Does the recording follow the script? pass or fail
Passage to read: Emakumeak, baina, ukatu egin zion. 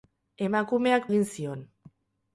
fail